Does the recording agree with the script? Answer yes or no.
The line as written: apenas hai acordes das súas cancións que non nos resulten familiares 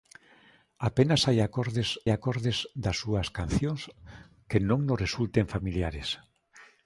no